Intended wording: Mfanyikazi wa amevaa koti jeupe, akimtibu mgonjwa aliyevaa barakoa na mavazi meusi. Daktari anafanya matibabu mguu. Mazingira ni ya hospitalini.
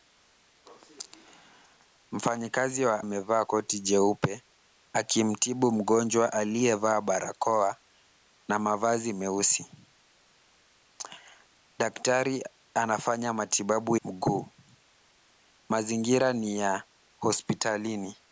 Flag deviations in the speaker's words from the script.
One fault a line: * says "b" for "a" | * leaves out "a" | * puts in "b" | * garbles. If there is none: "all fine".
all fine